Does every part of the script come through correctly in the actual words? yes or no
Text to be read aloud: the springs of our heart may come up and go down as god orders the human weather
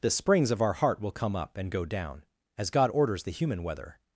no